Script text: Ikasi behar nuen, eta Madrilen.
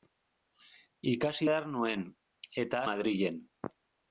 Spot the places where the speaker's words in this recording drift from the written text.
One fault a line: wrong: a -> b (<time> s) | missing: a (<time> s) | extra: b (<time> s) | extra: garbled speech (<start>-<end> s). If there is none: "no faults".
no faults